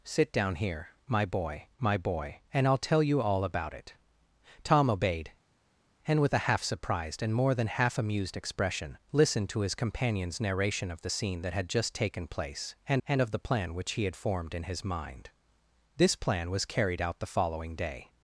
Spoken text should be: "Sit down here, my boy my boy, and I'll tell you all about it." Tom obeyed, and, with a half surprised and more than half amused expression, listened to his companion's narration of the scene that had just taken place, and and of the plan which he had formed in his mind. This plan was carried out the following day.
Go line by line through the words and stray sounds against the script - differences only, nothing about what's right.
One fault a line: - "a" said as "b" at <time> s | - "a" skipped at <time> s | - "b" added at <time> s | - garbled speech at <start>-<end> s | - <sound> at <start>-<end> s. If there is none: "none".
none